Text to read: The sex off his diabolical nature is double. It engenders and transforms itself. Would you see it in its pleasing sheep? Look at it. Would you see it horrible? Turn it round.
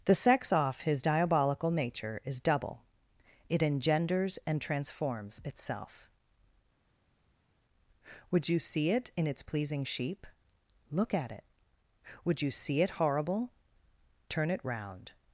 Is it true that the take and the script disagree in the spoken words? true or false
false